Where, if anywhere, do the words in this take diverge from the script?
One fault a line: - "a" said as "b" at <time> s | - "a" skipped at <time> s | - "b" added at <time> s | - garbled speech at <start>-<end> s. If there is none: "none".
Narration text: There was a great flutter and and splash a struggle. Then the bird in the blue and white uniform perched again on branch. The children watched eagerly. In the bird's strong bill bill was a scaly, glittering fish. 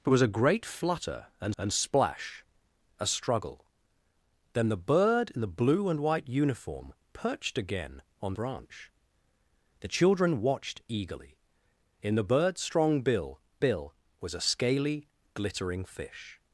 none